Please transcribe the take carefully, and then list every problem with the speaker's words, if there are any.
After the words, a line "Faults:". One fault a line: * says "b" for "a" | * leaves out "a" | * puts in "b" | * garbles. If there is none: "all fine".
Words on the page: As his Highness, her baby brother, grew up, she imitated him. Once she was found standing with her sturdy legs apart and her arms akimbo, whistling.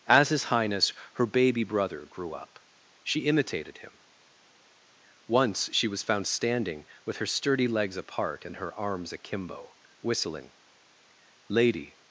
As his Highness, her baby brother, grew up, she imitated him. Once she was found standing with her sturdy legs apart and her arms akimbo, whistling. Lady
Faults:
* puts in "Lady"